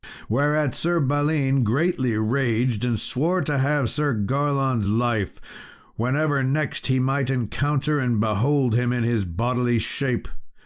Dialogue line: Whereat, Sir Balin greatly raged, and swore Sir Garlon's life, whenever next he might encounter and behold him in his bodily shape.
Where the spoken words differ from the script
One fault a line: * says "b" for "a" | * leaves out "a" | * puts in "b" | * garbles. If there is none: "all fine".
* puts in "to have"